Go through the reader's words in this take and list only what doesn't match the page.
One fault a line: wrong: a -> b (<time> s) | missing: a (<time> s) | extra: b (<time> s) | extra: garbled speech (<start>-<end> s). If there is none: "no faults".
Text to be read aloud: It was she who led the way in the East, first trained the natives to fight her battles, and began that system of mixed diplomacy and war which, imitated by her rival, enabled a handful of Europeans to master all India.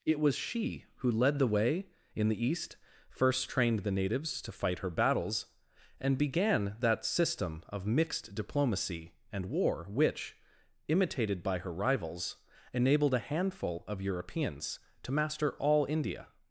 wrong: rival -> rivals (11.7 s)